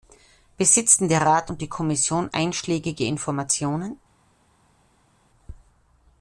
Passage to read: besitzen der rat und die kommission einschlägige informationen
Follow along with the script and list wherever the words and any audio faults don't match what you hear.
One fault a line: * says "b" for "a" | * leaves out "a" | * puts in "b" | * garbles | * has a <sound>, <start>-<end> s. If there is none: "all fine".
all fine